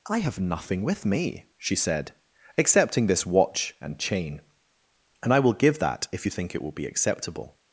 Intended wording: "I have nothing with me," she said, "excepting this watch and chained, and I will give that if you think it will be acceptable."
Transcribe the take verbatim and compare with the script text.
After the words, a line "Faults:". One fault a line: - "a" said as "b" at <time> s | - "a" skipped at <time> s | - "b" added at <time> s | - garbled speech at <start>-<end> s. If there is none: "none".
"I have nothing with me," she said, "excepting this watch and chain, and I will give that if you think it will be acceptable."
Faults:
- "chained" said as "chain" at 4.0 s